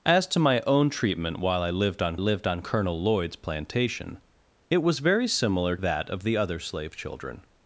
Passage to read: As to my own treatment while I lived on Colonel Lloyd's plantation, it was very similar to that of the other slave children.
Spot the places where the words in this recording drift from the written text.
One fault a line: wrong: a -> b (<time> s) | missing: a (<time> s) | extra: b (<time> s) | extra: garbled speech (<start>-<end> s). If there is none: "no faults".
extra: lived on (2.2 s)
missing: to (5.8 s)